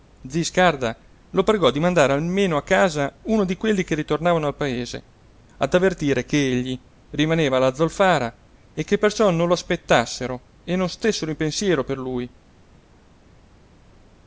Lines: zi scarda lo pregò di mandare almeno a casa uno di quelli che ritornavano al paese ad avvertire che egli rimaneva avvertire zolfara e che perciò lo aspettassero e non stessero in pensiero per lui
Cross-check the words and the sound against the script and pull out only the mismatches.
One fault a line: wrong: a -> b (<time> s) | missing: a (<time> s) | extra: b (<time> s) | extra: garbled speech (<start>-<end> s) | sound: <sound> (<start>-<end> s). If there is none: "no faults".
wrong: avvertire -> alla (7.6 s)
extra: non (9.3 s)